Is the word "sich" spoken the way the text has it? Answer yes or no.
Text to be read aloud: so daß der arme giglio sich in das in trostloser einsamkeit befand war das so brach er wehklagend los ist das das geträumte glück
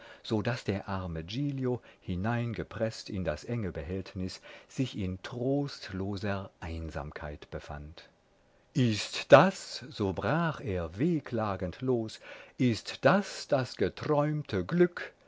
no